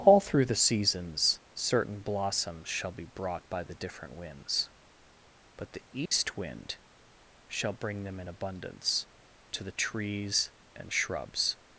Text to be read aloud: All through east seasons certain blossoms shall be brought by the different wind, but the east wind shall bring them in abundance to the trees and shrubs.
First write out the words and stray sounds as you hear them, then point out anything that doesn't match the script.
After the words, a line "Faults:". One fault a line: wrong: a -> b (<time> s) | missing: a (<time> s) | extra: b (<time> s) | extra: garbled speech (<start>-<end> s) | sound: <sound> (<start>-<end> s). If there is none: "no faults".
All through the seasons certain blossoms shall be brought by the different winds, but the east wind shall bring them in abundance to the trees and shrubs.
Faults:
wrong: east -> the (0.5 s)
wrong: wind -> winds (4.2 s)
sound: dropout (6.1-6.1 s)